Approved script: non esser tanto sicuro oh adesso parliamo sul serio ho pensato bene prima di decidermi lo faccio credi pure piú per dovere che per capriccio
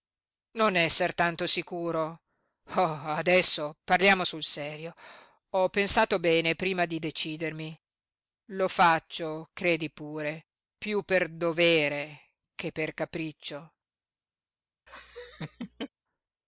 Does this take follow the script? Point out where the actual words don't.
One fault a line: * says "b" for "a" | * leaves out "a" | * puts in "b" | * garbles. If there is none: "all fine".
all fine